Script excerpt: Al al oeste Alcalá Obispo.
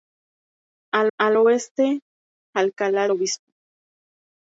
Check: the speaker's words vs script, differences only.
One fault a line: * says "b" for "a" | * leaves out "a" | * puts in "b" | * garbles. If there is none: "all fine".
all fine